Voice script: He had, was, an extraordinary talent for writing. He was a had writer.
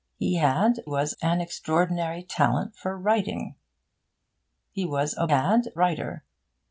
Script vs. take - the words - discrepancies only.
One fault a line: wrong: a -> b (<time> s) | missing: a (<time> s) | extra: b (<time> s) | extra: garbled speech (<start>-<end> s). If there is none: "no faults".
no faults